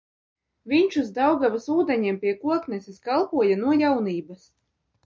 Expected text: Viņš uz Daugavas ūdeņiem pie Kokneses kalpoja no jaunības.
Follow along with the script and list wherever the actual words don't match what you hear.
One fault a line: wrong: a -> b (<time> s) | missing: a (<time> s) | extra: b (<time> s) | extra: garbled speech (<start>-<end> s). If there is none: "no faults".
no faults